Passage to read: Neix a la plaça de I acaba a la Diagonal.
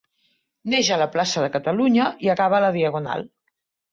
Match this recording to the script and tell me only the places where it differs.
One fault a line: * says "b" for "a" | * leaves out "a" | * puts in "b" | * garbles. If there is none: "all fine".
* puts in "Catalunya"